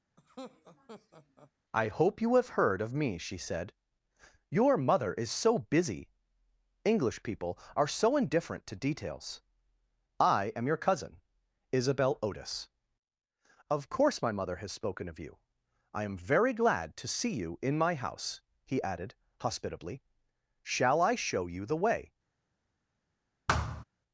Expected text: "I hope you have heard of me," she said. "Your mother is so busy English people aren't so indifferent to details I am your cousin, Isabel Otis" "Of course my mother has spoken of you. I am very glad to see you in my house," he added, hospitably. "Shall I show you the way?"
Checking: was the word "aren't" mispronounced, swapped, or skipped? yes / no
yes